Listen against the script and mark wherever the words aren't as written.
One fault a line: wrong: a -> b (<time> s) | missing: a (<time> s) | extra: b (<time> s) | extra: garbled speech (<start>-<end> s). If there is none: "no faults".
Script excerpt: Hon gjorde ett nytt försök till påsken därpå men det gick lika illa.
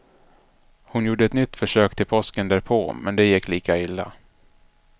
no faults